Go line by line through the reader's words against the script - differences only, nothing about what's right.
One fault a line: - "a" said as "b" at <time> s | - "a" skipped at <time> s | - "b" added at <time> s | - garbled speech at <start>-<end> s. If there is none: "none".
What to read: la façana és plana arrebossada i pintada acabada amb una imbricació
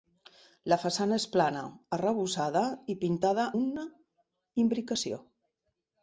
- "acabada amb" skipped at 3.5 s